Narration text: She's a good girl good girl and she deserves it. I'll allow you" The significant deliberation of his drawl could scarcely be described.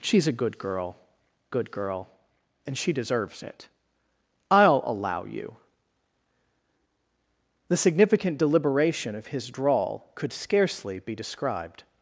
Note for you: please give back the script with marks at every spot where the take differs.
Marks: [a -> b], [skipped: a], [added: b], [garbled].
She's a good girl good girl and she deserves it. I'll allow you" The significant deliberation of his drawl could scarcely be described.